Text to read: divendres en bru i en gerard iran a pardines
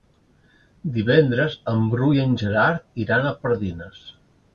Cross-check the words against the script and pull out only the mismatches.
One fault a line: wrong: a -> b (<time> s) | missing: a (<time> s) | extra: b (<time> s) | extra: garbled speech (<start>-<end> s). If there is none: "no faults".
no faults